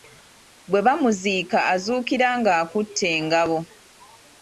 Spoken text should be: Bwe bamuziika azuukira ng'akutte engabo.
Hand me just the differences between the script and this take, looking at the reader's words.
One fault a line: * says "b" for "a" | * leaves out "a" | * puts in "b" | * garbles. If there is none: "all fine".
all fine